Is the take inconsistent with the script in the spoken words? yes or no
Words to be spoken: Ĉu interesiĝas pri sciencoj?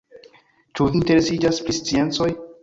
no